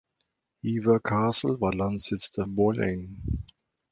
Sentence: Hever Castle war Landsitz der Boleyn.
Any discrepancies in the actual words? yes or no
no